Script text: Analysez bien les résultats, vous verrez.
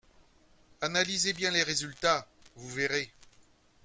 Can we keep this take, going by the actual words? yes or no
yes